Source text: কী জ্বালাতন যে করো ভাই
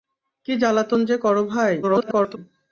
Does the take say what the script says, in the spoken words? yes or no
no